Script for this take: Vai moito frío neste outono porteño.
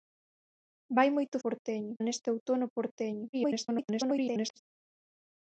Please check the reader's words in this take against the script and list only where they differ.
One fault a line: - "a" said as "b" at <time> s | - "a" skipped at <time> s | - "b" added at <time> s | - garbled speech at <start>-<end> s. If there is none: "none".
- "frío" said as "porteño" at 1.4 s
- garbled speech at 3.3-4.6 s